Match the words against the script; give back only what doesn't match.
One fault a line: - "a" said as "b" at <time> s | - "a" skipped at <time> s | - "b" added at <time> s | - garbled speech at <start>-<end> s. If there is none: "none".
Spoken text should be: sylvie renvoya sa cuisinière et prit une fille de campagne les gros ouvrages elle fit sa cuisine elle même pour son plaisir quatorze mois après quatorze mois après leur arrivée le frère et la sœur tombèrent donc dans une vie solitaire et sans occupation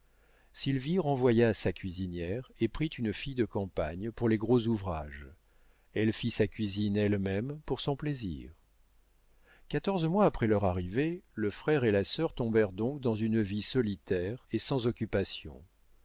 - "pour" added at 4.1 s
- "quatorze mois après" skipped at 10.5 s